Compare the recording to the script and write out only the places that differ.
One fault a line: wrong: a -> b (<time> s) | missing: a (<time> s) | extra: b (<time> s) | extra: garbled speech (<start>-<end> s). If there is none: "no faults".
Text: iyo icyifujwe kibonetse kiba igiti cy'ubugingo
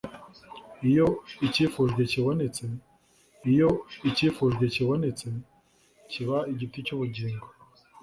extra: iyo icyifujwe kibonetse (3.5 s)